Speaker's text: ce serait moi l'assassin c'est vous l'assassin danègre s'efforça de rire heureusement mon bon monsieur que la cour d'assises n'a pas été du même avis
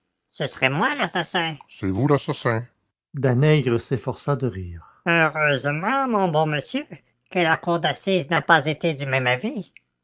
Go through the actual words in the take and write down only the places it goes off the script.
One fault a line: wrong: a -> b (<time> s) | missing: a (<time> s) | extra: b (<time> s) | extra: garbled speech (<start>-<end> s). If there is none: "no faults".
no faults